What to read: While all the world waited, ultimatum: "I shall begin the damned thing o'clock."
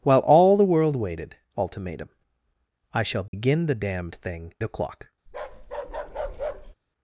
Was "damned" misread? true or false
false